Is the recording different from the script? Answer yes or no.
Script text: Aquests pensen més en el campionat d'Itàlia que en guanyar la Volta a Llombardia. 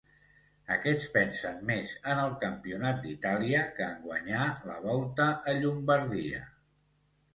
no